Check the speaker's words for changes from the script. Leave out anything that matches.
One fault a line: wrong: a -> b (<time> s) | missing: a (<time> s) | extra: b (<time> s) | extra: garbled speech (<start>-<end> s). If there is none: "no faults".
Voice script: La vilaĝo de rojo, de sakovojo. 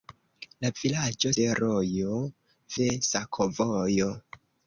no faults